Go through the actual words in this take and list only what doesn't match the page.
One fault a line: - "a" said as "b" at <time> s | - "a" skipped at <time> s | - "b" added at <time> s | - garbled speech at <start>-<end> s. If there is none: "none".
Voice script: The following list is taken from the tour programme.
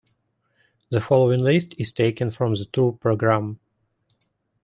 none